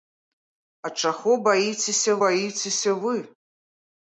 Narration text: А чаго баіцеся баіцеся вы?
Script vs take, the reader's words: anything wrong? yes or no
no